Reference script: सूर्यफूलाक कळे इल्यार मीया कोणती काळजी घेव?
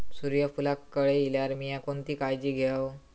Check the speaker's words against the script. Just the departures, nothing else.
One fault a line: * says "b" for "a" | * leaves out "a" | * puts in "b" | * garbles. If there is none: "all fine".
all fine